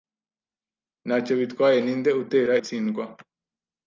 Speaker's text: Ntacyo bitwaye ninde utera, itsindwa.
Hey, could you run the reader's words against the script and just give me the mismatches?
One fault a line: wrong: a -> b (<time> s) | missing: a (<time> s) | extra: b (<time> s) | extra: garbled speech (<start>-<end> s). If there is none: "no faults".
no faults